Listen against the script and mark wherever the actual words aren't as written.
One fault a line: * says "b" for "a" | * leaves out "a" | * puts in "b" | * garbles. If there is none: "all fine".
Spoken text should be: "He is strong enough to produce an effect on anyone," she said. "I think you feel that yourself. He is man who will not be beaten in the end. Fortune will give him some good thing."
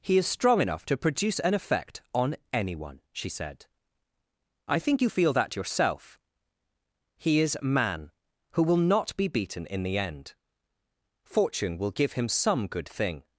all fine